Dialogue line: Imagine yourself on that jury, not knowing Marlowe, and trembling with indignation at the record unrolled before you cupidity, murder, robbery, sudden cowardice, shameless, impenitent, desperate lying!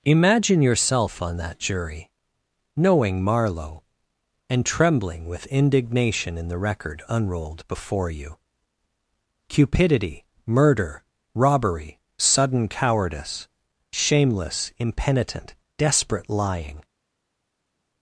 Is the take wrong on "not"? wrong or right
wrong